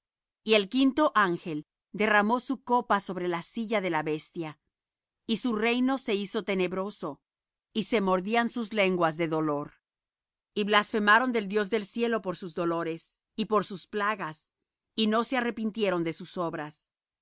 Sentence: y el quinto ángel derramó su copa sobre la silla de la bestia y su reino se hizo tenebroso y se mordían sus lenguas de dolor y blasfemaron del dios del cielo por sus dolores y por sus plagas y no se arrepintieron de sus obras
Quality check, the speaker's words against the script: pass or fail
pass